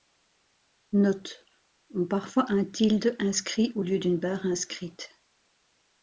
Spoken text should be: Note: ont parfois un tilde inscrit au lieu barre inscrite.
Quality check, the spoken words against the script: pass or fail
fail